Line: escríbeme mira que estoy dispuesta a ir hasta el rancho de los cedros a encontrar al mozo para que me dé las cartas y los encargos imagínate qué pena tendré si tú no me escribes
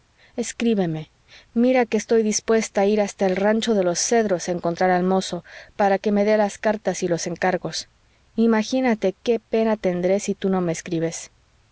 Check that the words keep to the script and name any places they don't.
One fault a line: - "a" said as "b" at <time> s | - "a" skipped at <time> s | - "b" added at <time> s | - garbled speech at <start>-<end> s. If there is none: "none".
none